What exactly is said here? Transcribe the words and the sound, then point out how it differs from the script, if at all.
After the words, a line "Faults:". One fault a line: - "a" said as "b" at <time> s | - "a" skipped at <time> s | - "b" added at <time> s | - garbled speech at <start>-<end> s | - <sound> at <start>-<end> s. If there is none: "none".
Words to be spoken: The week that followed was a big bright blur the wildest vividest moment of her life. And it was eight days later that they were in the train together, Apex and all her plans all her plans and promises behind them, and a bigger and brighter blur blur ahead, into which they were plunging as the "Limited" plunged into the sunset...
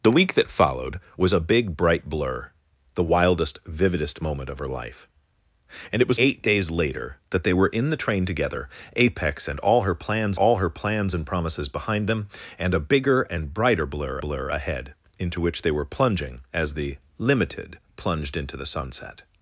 The week that followed was a big bright blur the wildest vividest moment of her life. And it was eight days later that they were in the train together, Apex and all her plans all her plans and promises behind them, and a bigger and brighter blur blur ahead, into which they were plunging as the "Limited" plunged into the sunset...
Faults:
none